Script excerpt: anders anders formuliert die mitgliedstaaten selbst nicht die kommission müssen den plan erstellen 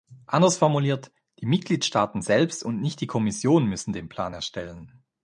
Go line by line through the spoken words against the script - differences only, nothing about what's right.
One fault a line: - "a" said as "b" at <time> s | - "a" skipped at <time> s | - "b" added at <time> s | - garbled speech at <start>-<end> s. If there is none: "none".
- "anders" skipped at 0.6 s
- "und" added at 2.6 s